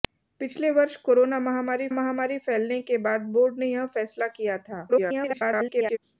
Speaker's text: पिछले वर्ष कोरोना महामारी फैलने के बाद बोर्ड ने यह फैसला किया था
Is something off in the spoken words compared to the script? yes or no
yes